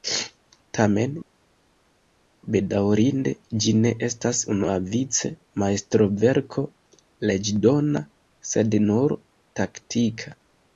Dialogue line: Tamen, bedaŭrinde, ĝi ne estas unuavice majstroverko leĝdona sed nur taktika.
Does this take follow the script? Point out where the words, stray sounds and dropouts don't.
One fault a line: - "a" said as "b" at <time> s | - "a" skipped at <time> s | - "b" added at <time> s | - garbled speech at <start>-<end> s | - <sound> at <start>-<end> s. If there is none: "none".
none